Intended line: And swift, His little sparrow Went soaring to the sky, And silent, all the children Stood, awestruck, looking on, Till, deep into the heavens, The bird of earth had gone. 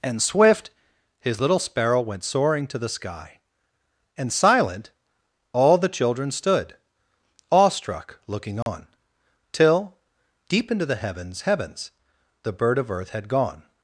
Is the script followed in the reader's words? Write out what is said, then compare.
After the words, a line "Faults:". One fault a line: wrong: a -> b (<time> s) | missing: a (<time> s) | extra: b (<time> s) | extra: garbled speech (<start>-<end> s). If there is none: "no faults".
And swift, His little sparrow Went soaring to the sky, And silent, all the children Stood, awestruck, looking on, Till, deep into the heavens heavens, The bird of earth had gone.
Faults:
extra: heavens (11.4 s)